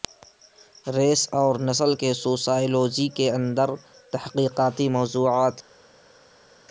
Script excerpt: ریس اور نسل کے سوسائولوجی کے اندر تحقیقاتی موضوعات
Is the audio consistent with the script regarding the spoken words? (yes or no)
yes